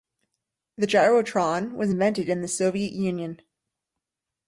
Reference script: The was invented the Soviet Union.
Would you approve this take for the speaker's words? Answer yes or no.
no